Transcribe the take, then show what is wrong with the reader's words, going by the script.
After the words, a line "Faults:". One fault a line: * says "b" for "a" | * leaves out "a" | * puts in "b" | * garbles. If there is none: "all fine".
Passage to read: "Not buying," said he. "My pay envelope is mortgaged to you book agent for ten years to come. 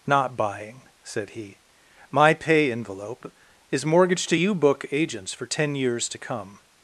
"Not buying," said he. "My pay envelope is mortgaged to you book agents for ten years to come.
Faults:
* says "agents" for "agent"